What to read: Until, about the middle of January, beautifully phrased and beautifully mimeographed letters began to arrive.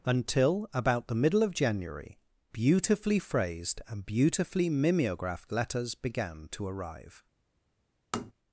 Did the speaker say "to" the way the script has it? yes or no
yes